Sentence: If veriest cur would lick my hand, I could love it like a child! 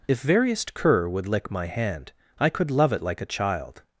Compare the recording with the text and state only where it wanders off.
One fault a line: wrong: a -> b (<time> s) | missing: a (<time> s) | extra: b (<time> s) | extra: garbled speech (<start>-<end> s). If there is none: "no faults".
no faults